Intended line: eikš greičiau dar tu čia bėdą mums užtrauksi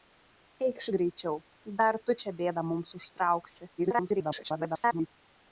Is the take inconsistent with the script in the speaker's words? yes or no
yes